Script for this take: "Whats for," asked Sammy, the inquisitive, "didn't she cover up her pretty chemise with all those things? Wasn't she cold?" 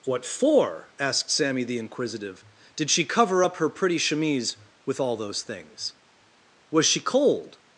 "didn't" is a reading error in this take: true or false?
true